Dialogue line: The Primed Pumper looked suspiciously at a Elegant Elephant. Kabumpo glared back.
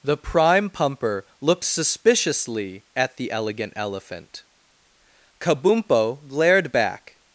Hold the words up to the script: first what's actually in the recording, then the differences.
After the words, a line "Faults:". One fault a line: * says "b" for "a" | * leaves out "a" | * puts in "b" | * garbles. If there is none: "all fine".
The Prime Pumper looked suspiciously at the Elegant Elephant. Kabumpo glared back.
Faults:
* says "Prime" for "Primed"
* says "the" for "a"